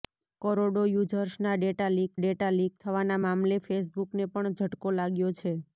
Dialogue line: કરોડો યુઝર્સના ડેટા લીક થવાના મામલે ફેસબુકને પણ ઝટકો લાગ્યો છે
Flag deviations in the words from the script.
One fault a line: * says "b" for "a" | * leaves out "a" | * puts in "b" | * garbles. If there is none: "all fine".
* puts in "ડેટા લીક"